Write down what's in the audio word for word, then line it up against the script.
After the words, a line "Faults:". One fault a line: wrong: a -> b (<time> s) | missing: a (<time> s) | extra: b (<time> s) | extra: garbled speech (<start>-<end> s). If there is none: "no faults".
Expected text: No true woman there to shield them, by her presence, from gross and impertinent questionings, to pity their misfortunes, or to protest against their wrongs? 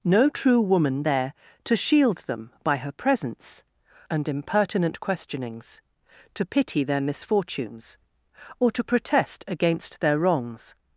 No true woman there to shield them, by her presence, and impertinent questionings, to pity their misfortunes, or to protest against their wrongs?
Faults:
missing: from gross (3.6 s)